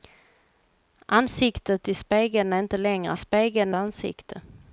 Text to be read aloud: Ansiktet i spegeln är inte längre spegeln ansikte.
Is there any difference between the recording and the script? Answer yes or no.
no